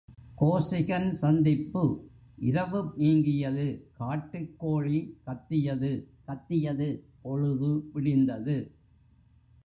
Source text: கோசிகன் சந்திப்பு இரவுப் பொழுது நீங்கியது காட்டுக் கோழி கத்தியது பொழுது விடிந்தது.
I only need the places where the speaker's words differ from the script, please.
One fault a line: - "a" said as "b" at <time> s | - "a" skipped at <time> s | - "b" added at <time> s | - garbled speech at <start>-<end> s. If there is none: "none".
- "பொழுது" skipped at 3.0 s
- "கத்தியது" added at 6.3 s